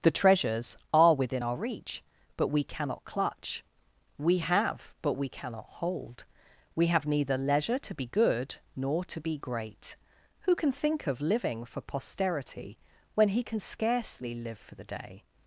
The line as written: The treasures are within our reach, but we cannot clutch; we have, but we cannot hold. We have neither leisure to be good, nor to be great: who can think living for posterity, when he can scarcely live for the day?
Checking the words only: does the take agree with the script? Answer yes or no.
no